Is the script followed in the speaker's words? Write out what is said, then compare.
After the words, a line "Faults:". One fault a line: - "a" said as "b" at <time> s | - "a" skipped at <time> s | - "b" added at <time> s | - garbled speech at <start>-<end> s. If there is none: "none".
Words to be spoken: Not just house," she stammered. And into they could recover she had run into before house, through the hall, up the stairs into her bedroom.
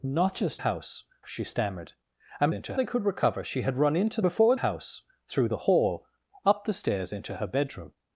Not just house," she stammered. And into they could recover she had run into before house, through the hall, up the stairs into her bedroom.
Faults:
none